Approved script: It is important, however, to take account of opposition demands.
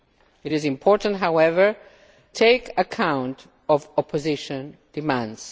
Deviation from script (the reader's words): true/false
true